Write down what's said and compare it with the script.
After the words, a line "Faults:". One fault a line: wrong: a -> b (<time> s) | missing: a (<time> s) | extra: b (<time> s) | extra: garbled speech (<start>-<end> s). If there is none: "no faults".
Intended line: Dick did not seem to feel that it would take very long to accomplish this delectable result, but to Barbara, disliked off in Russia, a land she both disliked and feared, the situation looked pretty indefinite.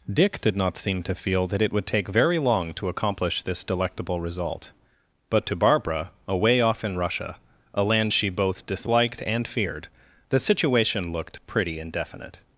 Dick did not seem to feel that it would take very long to accomplish this delectable result, but to Barbara, away off in Russia, a land she both disliked and feared, the situation looked pretty indefinite.
Faults:
wrong: disliked -> away (6.3 s)